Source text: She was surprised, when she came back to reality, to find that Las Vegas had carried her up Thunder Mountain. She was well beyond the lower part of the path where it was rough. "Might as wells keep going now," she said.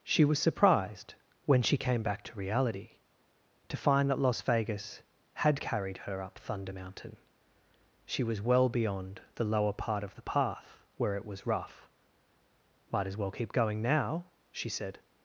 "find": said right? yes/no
yes